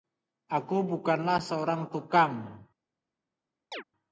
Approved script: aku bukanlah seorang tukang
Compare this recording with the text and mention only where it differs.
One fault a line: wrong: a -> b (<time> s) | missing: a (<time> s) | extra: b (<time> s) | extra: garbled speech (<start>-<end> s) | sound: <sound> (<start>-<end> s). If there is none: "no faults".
sound: chirp (3.7-3.8 s)